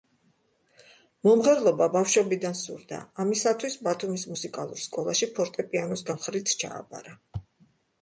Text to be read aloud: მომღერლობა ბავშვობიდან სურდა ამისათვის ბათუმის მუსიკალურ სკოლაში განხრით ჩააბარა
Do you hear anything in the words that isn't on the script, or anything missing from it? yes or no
yes